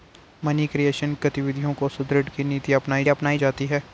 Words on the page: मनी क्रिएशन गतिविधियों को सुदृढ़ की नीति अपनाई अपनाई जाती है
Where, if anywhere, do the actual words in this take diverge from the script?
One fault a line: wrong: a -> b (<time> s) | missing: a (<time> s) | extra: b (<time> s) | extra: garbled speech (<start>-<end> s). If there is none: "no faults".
no faults